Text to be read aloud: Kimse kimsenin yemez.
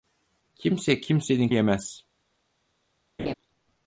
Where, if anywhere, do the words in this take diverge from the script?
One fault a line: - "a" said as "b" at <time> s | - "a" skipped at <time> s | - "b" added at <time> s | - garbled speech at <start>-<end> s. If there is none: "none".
none